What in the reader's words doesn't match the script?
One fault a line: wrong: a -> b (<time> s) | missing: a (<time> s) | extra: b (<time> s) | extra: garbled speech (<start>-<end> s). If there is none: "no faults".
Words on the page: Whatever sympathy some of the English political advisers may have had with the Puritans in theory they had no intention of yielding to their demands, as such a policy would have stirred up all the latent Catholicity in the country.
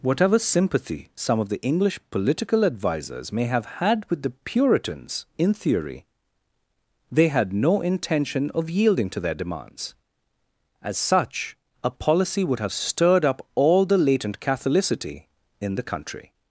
no faults